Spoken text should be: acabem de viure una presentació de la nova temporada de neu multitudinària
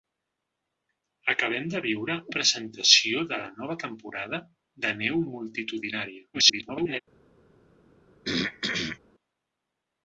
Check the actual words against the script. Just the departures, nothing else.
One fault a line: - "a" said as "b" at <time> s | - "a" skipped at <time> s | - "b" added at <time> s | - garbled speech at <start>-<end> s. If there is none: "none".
- "una" skipped at 2.1 s
- garbled speech at 6.3-7.0 s